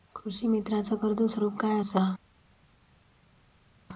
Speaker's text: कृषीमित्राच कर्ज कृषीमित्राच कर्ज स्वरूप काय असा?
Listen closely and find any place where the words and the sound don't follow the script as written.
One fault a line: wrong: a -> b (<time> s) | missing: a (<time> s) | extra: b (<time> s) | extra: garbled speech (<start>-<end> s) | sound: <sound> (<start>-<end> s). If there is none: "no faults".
missing: कृषीमित्राच कर्ज (1.2 s)